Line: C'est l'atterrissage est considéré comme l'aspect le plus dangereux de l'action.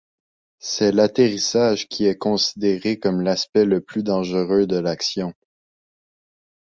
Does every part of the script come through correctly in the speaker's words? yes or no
no